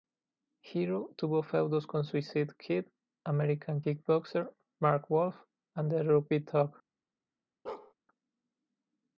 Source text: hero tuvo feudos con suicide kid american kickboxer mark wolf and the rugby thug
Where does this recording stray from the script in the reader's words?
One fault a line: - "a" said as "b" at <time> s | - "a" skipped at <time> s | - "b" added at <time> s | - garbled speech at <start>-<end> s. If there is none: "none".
none